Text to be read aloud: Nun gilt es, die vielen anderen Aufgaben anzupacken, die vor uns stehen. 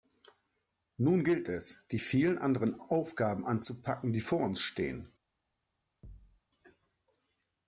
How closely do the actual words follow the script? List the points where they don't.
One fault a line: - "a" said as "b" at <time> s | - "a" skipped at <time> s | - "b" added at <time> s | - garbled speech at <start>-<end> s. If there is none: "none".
none